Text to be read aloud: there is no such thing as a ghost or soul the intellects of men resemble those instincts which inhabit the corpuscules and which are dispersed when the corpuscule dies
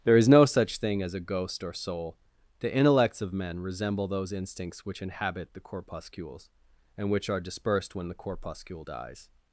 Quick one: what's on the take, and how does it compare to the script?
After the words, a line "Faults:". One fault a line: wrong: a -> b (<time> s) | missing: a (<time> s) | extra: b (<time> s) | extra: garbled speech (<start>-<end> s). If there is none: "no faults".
there is no such thing as a ghost or soul the intellects of men resemble those instincts which inhabit the corpuscules and which are dispersed when the corpuscule dies
Faults:
no faults